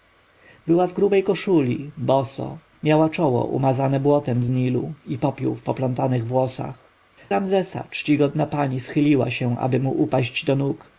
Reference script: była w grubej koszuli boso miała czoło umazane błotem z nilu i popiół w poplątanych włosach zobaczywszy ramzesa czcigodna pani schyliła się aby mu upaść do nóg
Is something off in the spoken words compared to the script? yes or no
yes